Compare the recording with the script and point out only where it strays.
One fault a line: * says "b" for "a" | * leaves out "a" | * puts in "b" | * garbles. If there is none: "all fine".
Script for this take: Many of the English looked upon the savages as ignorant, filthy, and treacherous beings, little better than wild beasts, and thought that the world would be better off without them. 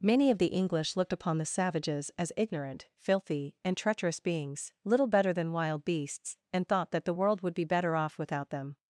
all fine